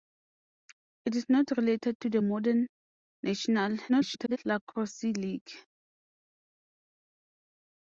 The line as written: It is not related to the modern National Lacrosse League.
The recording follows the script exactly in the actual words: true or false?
false